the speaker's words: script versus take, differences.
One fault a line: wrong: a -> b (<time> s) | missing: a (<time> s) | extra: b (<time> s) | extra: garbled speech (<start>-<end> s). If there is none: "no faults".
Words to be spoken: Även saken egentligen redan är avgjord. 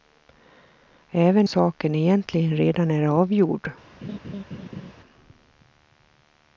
no faults